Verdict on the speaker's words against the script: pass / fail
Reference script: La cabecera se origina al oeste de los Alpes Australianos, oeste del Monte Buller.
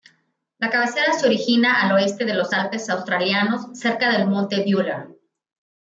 fail